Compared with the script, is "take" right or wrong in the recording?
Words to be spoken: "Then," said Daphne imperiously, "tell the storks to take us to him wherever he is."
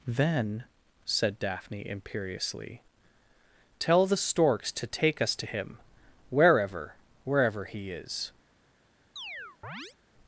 right